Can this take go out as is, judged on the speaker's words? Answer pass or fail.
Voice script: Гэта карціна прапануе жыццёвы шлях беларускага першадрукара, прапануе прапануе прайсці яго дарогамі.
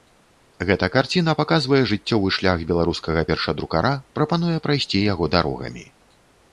fail